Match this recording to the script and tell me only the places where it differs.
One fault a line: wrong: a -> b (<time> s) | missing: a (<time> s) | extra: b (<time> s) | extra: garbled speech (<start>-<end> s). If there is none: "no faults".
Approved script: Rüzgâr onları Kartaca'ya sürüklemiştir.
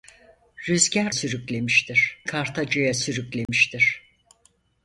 wrong: onları -> sürüklemiştir (1.1 s)